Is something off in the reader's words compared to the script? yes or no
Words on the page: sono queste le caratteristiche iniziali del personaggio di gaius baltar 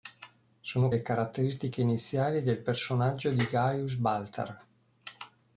yes